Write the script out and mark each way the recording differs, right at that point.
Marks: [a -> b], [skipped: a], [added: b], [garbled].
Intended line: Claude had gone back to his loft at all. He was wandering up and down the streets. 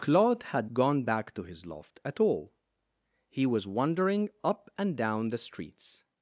Claude had gone back to his loft at all. He was wandering up and down the streets.